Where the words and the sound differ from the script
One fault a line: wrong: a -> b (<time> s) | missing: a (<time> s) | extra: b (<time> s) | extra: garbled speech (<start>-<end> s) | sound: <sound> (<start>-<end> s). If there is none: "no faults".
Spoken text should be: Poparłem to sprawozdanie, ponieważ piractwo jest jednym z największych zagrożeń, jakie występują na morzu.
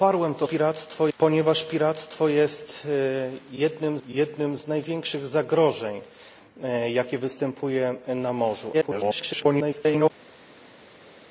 wrong: sprawozdanie -> piractwo (0.4 s)
extra: jednym (4.1 s)
extra: garbled speech (8.7-10.1 s)